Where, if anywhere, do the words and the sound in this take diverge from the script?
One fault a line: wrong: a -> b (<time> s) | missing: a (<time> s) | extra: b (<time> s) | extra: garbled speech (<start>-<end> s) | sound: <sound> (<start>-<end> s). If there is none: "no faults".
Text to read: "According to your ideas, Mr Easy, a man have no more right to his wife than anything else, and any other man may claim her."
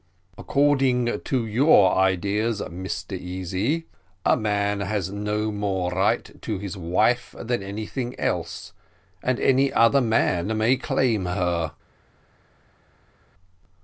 wrong: have -> has (4.8 s)